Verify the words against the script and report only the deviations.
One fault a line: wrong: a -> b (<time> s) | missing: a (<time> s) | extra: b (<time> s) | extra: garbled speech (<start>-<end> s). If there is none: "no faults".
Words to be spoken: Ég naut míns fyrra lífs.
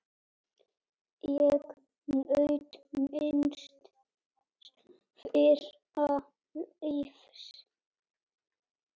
no faults